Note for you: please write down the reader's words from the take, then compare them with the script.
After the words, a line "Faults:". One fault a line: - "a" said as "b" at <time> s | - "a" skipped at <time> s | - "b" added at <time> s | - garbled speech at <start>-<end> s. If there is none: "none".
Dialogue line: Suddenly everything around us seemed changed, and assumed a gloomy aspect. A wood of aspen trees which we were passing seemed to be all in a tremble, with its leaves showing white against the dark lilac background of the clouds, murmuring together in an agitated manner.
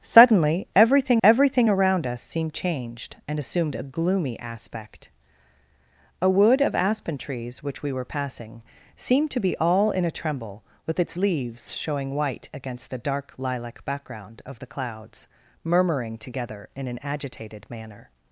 Suddenly everything everything around us seemed changed, and assumed a gloomy aspect. A wood of aspen trees which we were passing seemed to be all in a tremble, with its leaves showing white against the dark lilac background of the clouds, murmuring together in an agitated manner.
Faults:
- "everything" added at 1.2 s